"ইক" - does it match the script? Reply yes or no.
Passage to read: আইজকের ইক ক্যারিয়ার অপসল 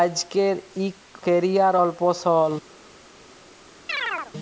yes